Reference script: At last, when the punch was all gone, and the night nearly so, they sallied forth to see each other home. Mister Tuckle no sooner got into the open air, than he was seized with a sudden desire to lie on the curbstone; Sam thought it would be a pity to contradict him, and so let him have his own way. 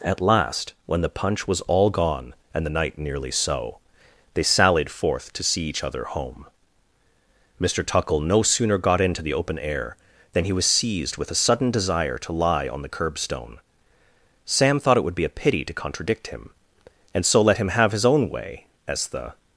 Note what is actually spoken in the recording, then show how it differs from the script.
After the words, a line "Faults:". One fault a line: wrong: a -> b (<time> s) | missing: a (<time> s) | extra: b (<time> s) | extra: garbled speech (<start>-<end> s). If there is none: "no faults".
At last, when the punch was all gone, and the night nearly so, they sallied forth to see each other home. Mister Tuckle no sooner got into the open air, than he was seized with a sudden desire to lie on the curbstone; Sam thought it would be a pity to contradict him, and so let him have his own way. As the
Faults:
extra: As the (18.9 s)